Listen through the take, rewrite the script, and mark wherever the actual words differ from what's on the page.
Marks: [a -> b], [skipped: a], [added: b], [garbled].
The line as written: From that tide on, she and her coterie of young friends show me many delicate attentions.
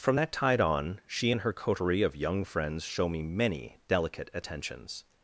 From that tide on, she and her coterie of young friends show me many delicate attentions.